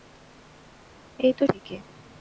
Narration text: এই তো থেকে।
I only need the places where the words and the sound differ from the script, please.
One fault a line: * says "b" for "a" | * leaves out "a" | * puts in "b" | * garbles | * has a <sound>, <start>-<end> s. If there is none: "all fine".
all fine